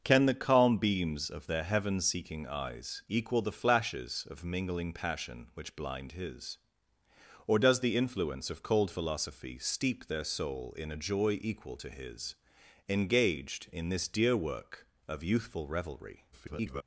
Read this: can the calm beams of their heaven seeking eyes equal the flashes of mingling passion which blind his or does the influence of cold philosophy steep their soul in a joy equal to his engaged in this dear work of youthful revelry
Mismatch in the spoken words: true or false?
true